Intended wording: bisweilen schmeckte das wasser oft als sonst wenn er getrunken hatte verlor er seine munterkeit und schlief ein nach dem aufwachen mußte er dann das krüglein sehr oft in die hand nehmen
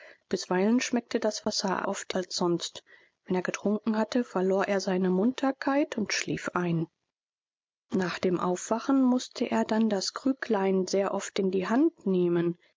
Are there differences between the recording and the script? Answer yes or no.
no